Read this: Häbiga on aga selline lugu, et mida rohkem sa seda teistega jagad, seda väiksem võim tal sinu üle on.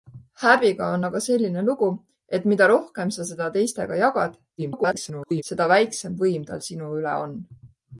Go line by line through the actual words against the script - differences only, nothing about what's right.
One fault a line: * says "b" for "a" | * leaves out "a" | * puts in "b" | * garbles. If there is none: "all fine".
* garbles